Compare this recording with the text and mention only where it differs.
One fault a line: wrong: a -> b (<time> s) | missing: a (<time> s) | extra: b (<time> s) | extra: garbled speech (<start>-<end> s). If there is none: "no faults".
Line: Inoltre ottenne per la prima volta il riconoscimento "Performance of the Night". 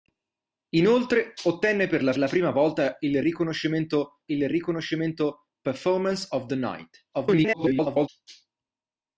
extra: la (2.2 s)
extra: il riconoscimento (4.3 s)
extra: garbled speech (7.1-8.1 s)